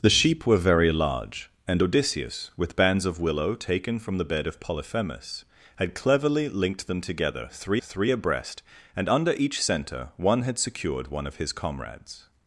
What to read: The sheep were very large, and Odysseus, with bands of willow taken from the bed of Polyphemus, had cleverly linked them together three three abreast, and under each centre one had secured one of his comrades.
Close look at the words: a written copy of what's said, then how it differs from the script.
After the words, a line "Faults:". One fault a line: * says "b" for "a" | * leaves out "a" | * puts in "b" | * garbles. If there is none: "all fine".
The sheep were very large, and Odysseus, with bands of willow taken from the bed of Polyphemus, had cleverly linked them together three three abreast, and under each centre one had secured one of his comrades.
Faults:
all fine